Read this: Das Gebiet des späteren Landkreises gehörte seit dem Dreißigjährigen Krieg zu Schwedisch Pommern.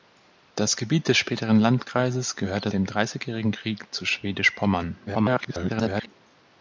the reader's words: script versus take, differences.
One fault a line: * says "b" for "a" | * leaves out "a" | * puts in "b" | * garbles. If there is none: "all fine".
* leaves out "seit"
* garbles